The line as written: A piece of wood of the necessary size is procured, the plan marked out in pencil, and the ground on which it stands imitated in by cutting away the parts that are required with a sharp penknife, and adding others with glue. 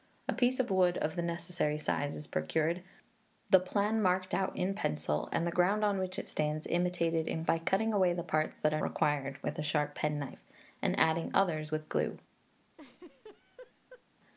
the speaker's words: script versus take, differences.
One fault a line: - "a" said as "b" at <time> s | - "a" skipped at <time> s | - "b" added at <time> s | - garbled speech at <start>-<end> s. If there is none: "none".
none